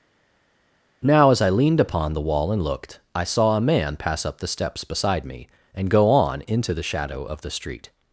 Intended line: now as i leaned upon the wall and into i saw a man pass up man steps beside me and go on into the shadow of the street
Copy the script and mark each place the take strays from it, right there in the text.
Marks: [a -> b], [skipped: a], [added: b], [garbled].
now as i leaned upon the wall and [into -> looked] i saw a man pass up [man -> the] steps beside me and go on into the shadow of the street